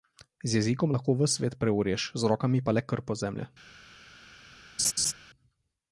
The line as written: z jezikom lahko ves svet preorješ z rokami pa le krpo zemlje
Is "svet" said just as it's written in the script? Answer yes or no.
yes